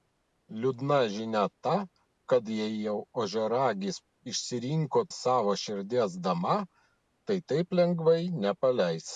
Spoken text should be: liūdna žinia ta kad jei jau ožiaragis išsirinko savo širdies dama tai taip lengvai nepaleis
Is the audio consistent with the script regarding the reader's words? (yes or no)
yes